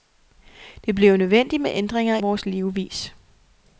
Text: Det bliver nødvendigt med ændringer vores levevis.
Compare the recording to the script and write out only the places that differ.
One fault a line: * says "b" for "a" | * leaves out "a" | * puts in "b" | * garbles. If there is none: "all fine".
all fine